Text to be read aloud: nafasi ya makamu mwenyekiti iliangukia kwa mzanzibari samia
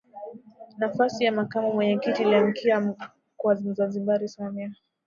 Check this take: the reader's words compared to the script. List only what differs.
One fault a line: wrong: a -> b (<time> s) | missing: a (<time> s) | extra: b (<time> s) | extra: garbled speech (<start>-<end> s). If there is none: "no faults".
no faults